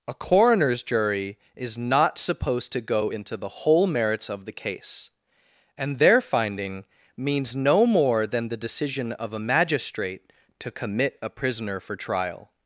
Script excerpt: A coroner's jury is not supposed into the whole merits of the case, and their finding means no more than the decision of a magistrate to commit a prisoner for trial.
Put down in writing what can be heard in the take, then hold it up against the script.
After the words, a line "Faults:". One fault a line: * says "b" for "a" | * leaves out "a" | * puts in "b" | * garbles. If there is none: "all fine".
A coroner's jury is not supposed to go into the whole merits of the case, and their finding means no more than the decision of a magistrate to commit a prisoner for trial.
Faults:
* puts in "to go"